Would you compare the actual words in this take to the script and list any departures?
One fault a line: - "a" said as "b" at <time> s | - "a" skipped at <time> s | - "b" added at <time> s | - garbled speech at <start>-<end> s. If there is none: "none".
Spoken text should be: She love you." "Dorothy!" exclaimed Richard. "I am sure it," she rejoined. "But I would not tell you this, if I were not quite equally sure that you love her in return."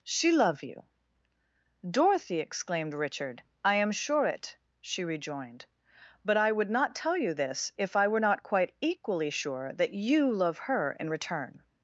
none